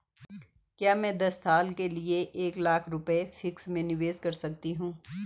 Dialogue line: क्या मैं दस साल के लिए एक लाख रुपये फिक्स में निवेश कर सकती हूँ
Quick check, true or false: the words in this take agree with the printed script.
true